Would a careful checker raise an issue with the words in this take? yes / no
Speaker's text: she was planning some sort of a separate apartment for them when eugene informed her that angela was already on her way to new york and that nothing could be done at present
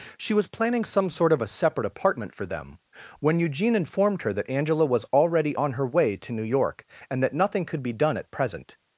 no